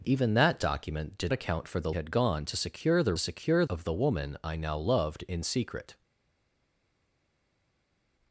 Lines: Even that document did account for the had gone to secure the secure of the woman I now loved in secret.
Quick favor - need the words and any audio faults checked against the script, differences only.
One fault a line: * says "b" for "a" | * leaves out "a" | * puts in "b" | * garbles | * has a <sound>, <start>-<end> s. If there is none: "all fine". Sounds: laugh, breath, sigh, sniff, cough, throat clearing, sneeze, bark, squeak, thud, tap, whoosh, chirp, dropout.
all fine